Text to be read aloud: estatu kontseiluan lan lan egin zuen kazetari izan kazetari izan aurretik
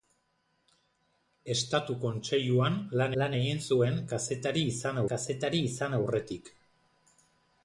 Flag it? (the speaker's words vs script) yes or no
no